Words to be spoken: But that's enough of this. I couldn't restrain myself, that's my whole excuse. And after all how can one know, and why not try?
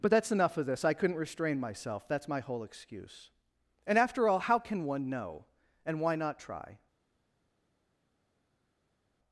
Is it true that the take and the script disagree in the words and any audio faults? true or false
false